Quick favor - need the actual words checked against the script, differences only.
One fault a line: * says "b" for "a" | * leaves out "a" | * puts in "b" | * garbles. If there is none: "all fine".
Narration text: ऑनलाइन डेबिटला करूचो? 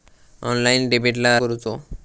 all fine